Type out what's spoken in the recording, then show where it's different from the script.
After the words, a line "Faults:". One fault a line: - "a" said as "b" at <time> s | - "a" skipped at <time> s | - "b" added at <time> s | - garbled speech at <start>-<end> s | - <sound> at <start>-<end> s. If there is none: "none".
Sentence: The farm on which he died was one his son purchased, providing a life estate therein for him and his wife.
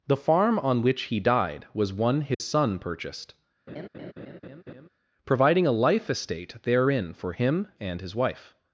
The farm on which he died was one his son purchased, providing a life estate therein for him and his wife.
Faults:
- dropout at 2.3-2.4 s
- laugh at 3.7-4.9 s